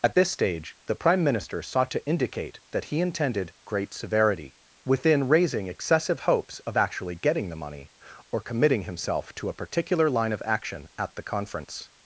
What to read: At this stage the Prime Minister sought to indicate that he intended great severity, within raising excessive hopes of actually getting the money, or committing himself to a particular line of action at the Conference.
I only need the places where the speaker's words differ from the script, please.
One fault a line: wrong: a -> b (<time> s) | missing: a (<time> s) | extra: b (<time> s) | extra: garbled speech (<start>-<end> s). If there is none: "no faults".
no faults